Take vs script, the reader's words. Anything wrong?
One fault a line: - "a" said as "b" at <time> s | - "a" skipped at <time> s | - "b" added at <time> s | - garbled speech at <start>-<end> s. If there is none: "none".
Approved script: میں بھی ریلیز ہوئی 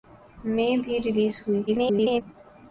- garbled speech at 1.7-2.2 s